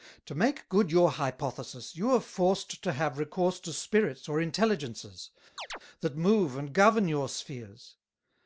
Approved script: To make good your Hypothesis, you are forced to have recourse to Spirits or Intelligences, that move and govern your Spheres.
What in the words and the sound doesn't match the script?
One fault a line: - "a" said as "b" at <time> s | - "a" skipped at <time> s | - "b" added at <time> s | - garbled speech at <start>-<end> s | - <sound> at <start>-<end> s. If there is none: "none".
- chirp at 5.6-5.8 s